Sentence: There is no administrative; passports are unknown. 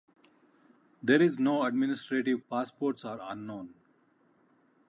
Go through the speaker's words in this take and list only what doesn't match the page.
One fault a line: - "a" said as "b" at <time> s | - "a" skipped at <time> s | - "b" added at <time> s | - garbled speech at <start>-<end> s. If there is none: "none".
none